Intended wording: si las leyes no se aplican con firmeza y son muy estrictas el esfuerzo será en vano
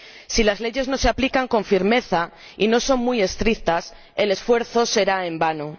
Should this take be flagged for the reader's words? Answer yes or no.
yes